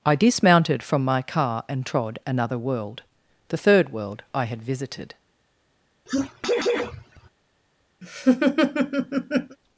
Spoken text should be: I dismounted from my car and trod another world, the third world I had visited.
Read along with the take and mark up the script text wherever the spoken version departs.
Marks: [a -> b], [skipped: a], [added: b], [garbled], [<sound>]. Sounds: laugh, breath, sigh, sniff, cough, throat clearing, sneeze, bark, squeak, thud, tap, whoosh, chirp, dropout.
I dismounted from my car and trod another world, the third world I had visited. [sneeze] [laugh]